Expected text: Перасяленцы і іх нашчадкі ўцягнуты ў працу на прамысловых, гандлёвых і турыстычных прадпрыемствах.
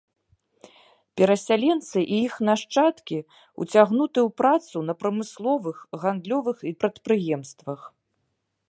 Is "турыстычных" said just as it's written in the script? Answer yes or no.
no